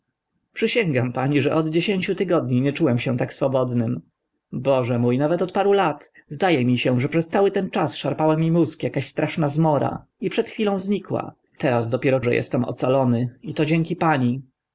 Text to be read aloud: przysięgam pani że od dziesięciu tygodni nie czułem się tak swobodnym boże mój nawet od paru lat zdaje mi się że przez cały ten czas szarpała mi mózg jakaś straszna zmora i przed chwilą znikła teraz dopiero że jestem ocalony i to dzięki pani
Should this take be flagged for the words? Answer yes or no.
no